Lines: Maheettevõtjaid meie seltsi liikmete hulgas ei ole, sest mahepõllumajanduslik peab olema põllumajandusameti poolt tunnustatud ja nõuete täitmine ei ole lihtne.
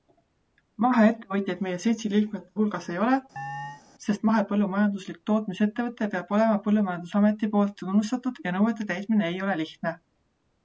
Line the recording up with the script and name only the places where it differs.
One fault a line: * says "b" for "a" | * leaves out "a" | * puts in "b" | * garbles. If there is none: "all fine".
* puts in "tootmisettevõte"